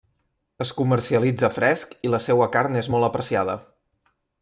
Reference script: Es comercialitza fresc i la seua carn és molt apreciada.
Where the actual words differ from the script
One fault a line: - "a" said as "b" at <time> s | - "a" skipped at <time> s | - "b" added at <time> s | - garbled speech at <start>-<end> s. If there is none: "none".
none